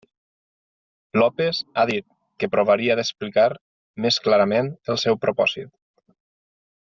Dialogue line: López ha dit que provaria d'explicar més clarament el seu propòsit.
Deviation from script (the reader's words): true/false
false